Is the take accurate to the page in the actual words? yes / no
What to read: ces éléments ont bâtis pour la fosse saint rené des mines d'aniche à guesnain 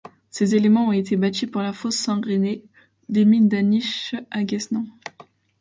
no